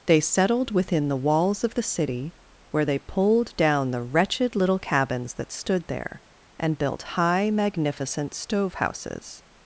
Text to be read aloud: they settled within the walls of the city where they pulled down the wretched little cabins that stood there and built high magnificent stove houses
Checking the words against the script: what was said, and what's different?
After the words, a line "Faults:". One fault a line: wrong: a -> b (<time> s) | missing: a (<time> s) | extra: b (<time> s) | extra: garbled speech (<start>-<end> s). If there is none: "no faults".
they settled within the walls of the city where they pulled down the wretched little cabins that stood there and built high magnificent stove houses
Faults:
no faults